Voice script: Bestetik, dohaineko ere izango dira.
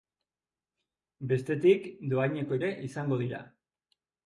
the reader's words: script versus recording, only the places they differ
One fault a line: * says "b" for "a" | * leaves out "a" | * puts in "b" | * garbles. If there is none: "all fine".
all fine